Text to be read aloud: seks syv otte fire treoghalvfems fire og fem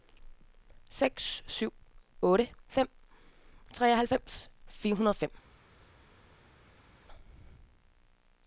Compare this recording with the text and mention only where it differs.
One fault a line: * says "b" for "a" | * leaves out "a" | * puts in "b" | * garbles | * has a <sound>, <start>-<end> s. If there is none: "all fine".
* says "fem" for "fire"
* puts in "hundrede"